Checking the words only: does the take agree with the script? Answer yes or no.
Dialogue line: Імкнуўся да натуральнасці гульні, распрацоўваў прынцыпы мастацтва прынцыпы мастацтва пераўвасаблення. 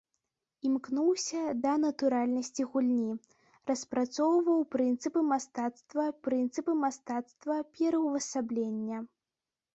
yes